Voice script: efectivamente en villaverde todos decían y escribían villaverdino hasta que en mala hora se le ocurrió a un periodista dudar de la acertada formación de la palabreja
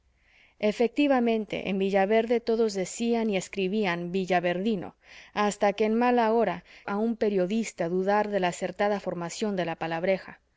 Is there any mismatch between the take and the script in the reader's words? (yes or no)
yes